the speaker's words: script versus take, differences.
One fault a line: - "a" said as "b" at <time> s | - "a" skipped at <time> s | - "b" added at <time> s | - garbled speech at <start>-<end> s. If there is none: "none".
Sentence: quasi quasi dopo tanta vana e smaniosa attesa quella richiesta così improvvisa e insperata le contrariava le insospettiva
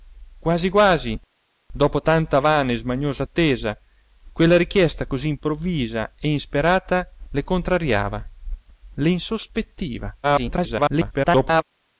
- garbled speech at 10.2-11.6 s